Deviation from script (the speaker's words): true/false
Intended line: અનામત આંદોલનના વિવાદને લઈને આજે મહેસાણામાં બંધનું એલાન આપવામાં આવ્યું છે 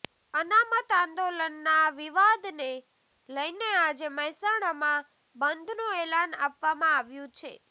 false